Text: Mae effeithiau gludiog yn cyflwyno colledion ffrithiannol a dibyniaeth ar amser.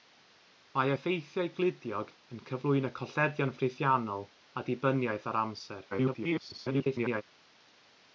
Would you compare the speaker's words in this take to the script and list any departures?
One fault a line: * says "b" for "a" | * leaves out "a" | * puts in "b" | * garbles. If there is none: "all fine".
* garbles